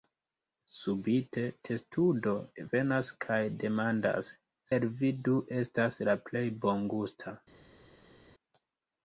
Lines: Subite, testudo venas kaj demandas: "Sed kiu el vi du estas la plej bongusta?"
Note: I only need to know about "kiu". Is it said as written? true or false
false